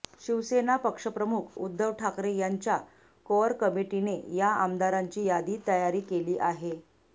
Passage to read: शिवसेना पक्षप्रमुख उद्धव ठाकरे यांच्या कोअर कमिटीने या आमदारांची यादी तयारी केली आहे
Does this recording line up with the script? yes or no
yes